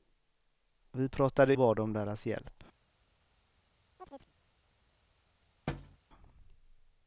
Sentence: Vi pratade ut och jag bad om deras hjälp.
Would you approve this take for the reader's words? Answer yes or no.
no